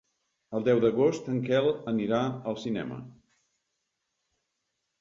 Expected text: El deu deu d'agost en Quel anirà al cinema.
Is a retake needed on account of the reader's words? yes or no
yes